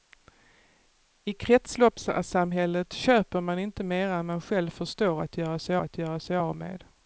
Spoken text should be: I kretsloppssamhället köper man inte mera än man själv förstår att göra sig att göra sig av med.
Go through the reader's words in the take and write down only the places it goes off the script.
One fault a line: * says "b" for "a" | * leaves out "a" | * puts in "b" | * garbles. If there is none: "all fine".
all fine